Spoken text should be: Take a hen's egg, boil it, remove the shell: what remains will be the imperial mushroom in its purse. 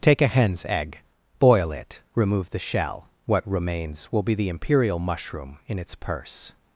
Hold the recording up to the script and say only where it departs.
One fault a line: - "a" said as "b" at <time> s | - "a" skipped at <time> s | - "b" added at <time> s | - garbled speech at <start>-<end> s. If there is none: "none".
none